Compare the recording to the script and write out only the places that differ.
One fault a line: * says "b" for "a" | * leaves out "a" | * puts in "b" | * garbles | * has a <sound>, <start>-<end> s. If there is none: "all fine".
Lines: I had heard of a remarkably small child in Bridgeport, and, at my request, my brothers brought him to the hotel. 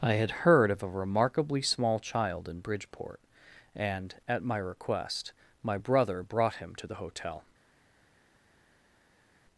* says "brother" for "brothers"